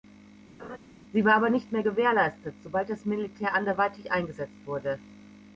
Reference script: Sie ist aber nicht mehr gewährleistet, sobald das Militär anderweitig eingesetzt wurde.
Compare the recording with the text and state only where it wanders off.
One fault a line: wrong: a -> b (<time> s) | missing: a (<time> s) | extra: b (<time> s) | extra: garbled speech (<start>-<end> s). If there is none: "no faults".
wrong: ist -> war (1.2 s)